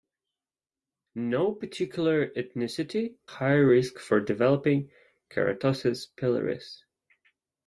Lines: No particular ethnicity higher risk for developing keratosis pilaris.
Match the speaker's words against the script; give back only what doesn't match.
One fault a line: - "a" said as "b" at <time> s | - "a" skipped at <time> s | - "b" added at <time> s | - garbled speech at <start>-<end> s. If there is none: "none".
none